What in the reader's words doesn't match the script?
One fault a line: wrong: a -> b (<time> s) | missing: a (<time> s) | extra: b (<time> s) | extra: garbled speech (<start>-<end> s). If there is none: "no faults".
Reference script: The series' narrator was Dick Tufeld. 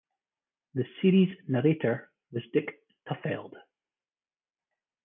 no faults